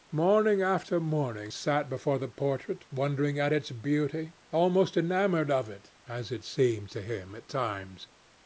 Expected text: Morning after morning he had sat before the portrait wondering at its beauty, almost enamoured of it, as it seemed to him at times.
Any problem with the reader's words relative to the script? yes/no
yes